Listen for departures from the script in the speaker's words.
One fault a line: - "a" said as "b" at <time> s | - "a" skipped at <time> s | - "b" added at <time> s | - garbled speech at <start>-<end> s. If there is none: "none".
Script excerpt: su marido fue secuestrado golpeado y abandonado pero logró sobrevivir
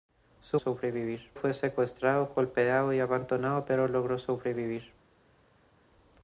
- "marido" said as "sobrevivir" at 0.5 s